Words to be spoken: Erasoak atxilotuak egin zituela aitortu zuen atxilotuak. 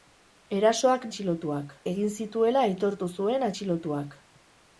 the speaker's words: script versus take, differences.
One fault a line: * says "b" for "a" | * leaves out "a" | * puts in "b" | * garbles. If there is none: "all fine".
all fine